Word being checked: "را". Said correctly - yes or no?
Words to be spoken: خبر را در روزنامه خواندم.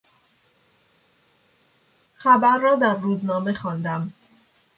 yes